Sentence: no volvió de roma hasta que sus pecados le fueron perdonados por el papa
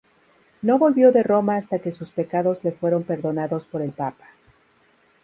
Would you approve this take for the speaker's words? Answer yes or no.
yes